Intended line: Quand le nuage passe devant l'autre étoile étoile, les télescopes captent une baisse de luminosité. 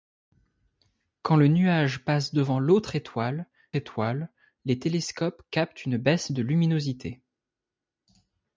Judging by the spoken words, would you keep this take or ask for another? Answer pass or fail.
pass